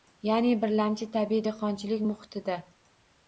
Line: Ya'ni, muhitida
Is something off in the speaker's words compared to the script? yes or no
yes